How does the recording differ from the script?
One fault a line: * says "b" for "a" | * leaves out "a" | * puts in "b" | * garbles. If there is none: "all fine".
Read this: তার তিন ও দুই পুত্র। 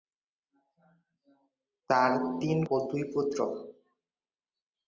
all fine